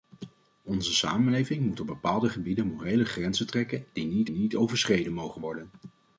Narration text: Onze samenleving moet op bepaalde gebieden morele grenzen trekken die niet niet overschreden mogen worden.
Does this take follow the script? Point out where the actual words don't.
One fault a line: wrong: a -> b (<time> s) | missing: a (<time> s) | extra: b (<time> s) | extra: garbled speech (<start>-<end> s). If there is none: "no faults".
no faults